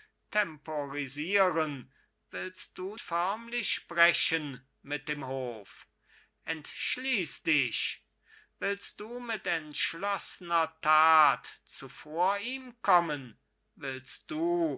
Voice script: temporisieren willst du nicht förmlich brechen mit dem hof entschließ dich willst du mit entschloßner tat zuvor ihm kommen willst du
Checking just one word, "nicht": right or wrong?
wrong